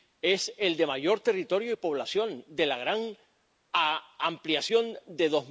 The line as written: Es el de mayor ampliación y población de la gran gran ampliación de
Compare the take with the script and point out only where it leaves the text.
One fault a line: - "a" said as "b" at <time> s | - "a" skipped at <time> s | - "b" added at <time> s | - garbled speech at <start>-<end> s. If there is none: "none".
- "ampliación" said as "territorio" at 1.2 s
- "gran" skipped at 3.2 s